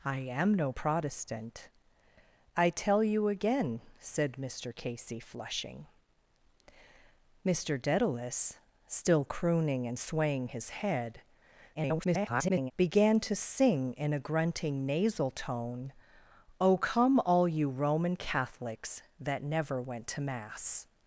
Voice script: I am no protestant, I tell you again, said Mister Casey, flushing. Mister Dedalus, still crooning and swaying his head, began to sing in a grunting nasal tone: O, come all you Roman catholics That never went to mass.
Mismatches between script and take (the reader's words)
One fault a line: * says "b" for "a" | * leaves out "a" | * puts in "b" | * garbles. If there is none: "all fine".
* garbles